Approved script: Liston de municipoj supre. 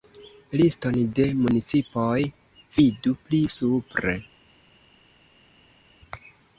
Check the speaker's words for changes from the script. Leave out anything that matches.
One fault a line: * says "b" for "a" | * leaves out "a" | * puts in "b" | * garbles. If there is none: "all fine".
* puts in "vidu pli"